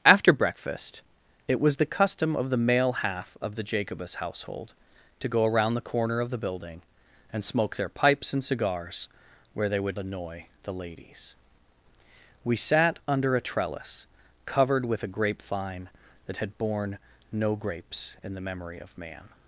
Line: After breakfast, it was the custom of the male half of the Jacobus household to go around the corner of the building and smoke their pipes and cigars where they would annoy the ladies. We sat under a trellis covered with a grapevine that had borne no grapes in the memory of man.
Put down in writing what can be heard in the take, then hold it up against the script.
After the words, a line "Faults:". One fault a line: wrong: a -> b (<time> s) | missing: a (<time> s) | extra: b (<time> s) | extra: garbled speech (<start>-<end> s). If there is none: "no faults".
After breakfast, it was the custom of the male half of the Jacobus household to go around the corner of the building and smoke their pipes and cigars where they would annoy the ladies. We sat under a trellis covered with a grapevine that had borne no grapes in the memory of man.
Faults:
no faults